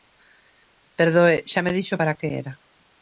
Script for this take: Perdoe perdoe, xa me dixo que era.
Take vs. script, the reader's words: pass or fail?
fail